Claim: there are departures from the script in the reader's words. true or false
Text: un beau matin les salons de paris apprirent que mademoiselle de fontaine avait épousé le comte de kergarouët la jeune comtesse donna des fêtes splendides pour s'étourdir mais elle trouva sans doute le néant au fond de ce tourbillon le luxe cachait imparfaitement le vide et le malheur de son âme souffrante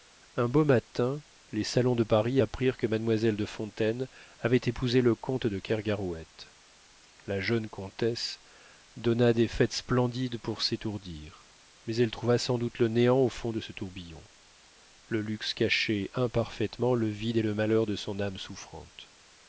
false